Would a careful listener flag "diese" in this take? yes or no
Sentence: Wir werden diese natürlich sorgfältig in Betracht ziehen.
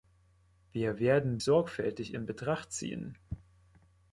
yes